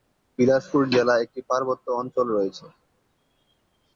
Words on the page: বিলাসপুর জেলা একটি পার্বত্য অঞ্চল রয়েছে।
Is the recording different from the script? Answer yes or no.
no